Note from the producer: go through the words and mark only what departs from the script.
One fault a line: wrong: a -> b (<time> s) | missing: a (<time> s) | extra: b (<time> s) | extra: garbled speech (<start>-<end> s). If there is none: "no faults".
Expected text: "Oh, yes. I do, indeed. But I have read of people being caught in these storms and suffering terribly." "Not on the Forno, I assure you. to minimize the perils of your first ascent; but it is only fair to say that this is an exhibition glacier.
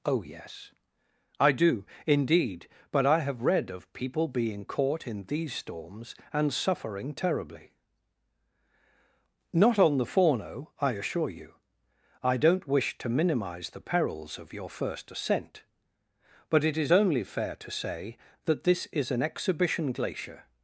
extra: I don't wish (12.2 s)